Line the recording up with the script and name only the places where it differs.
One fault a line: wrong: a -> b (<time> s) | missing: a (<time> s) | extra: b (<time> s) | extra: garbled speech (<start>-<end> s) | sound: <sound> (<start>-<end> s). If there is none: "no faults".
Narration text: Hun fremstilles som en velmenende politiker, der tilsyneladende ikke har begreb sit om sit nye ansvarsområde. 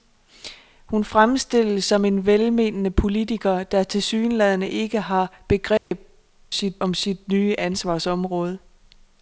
sound: dropout (5.8-5.9 s)